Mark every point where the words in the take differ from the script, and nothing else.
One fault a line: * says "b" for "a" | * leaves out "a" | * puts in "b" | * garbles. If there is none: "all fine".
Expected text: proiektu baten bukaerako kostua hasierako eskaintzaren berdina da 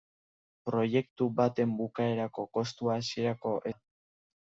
* leaves out "eskaintzaren berdina"